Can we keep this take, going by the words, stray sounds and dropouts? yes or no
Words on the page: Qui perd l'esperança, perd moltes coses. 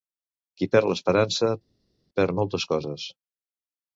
yes